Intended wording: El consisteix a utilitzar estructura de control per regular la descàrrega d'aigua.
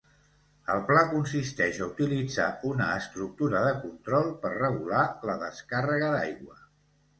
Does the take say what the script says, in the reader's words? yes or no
no